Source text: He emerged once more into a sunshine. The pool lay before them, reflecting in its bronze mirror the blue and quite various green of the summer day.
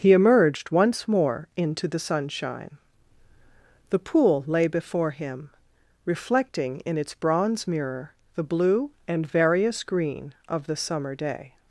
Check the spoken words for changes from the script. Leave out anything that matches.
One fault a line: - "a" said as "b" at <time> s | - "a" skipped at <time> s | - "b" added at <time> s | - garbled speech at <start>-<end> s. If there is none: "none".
- "a" said as "the" at 1.9 s
- "them" said as "him" at 5.1 s
- "quite" skipped at 9.3 s